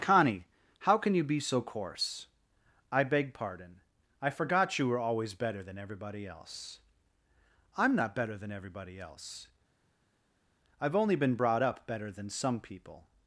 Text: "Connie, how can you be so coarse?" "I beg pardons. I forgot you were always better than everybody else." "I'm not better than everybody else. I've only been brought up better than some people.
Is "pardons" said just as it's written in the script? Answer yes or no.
no